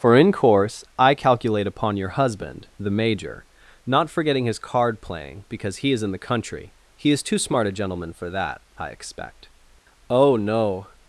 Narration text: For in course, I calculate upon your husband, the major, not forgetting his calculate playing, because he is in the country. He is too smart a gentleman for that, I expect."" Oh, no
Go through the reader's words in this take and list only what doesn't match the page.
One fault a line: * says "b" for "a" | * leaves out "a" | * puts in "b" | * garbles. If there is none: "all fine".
* says "card" for "calculate"